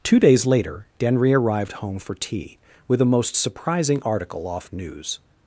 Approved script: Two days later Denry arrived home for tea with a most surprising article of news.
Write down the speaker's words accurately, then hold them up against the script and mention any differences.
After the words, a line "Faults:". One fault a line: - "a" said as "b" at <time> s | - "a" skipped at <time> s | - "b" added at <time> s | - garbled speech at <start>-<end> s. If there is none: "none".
Two days later Denry arrived home for tea with a most surprising article off news.
Faults:
- "of" said as "off" at 4.5 s